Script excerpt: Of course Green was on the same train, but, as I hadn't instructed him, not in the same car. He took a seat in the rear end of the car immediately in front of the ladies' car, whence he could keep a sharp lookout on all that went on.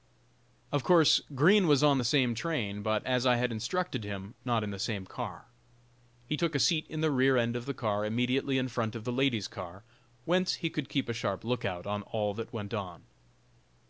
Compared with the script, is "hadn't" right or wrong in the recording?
wrong